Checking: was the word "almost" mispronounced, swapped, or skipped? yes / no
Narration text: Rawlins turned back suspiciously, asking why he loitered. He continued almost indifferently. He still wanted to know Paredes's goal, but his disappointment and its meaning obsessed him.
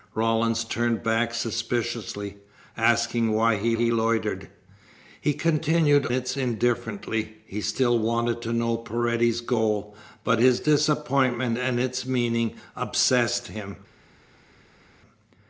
yes